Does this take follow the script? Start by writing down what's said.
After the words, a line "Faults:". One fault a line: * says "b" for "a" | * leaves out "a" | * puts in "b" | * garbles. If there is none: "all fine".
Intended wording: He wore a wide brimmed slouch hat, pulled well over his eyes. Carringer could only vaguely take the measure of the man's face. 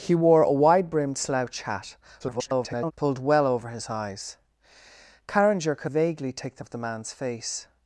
He wore a wide brimmed slouch hat, [garbled] pulled well over his eyes. Carringer could vaguely take the of the man's face.
Faults:
* garbles
* leaves out "only"
* leaves out "measure"